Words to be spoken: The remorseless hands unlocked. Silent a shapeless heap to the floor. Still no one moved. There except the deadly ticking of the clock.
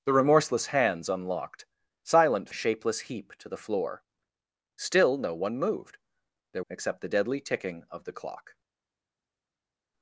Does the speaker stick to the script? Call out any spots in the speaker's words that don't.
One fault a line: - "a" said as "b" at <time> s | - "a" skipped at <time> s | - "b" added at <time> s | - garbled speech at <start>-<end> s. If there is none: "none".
none